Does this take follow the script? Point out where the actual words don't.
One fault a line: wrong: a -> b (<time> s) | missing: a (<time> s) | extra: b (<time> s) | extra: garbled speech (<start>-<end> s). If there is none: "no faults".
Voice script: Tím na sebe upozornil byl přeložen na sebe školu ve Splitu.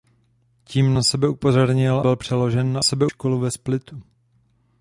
no faults